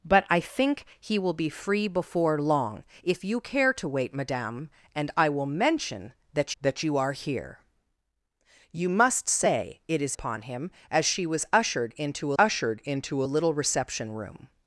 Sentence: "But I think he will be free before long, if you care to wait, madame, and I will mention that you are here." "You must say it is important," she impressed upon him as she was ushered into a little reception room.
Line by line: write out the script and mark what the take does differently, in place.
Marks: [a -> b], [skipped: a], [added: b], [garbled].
"But I think he will be free before long, if you care to wait, madame, and I will mention that [added: that] you are here." "You must say it is [skipped: important," she impressed] upon him as she was ushered into [added: ushered into] a little reception room.